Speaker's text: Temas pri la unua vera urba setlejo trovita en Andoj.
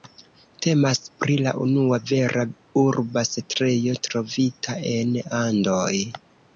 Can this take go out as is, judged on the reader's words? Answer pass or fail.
pass